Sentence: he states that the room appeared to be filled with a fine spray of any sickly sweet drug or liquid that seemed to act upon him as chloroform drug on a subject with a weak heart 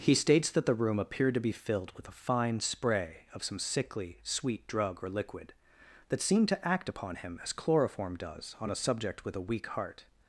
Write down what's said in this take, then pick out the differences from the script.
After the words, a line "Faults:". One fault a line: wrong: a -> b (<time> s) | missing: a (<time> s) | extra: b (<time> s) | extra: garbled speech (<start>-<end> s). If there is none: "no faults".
he states that the room appeared to be filled with a fine spray of some sickly sweet drug or liquid that seemed to act upon him as chloroform does on a subject with a weak heart
Faults:
wrong: any -> some (3.4 s)
wrong: drug -> does (8.2 s)